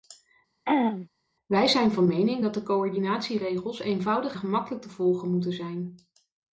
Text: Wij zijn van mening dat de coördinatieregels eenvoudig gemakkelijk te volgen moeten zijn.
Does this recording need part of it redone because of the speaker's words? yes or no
no